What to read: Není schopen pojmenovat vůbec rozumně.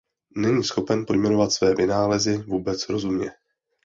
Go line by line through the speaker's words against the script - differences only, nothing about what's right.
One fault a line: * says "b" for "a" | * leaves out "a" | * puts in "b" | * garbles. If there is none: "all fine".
* puts in "své vynálezy"